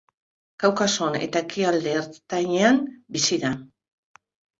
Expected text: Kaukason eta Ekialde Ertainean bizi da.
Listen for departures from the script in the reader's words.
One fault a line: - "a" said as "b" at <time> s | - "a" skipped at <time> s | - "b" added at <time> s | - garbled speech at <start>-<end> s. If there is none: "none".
none